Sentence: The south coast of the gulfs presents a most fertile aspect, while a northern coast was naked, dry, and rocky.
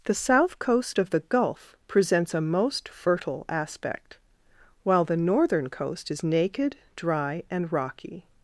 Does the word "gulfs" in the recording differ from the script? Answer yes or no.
yes